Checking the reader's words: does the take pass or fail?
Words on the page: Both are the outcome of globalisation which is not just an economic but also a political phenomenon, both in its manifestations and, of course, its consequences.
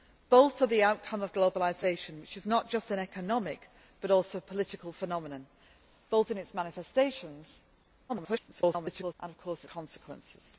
fail